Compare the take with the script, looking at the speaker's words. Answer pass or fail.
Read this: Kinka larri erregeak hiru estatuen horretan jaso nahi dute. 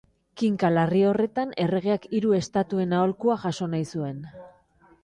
fail